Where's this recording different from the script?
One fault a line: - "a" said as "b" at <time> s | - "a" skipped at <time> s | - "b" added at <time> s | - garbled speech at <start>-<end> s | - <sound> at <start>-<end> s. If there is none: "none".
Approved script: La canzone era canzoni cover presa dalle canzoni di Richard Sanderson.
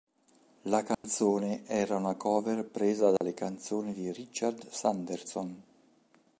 - dropout at 0.9-1.0 s
- "canzoni" said as "una" at 1.9 s
- dropout at 3.2-3.2 s